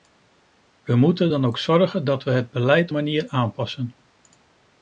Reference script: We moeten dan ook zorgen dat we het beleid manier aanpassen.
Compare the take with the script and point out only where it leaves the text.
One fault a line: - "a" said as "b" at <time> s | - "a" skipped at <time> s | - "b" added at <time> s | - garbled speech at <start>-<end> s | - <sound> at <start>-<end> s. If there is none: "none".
none